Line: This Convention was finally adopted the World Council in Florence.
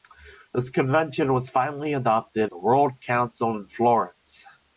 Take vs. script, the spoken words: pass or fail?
pass